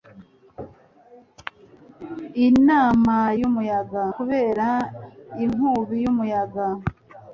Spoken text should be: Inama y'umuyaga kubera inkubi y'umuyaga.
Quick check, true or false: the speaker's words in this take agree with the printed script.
true